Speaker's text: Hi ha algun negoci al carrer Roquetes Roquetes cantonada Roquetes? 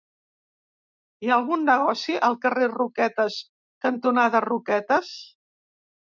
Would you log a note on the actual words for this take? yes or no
yes